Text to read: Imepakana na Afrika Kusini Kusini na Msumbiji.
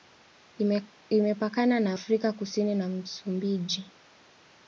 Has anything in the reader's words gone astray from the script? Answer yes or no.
yes